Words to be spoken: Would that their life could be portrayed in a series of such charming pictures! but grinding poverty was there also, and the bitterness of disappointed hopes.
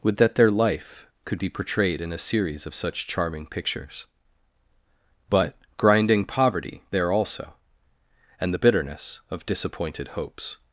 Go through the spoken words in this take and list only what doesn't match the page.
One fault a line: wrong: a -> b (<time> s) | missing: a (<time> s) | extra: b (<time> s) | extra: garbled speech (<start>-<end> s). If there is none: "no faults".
missing: was (6.8 s)